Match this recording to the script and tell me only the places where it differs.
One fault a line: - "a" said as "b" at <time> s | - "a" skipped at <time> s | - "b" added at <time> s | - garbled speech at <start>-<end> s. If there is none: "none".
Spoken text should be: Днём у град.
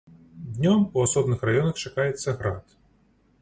- "асобных раёнах чакаецца" added at 1.1 s